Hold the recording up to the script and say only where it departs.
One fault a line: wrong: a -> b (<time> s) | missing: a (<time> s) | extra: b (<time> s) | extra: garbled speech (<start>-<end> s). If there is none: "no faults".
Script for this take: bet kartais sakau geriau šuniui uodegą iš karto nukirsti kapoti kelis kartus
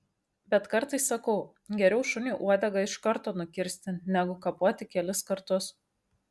extra: negu (4.2 s)